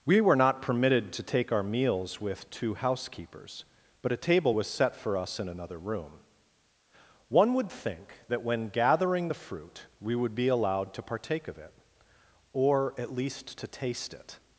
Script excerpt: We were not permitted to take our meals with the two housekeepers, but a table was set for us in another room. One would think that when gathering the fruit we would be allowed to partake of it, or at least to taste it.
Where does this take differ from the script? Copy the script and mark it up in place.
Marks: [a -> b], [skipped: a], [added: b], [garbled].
We were not permitted to take our meals with [skipped: the] two housekeepers, but a table was set for us in another room. One would think that when gathering the fruit we would be allowed to partake of it, or at least to taste it.